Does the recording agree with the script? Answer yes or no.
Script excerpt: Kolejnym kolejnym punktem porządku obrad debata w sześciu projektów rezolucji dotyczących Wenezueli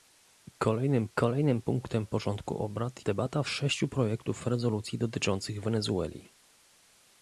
yes